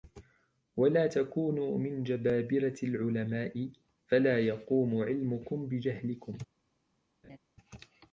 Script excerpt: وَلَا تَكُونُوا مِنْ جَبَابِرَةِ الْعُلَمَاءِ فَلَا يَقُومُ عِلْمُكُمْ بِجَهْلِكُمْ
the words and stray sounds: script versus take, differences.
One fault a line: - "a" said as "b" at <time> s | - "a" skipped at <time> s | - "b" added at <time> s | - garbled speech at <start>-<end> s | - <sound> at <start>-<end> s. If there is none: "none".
- laugh at 7.2-7.4 s